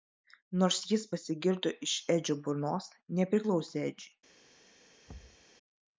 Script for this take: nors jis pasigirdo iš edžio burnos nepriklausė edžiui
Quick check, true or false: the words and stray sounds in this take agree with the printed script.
false